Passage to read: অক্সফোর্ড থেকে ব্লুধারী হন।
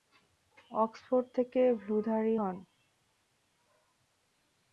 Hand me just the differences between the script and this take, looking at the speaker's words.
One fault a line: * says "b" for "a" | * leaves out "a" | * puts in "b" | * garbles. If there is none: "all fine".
all fine